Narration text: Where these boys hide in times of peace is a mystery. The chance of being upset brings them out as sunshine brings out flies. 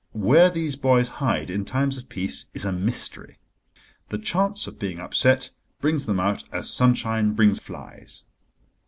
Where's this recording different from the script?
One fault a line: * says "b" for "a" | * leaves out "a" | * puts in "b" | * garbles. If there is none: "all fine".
* leaves out "out"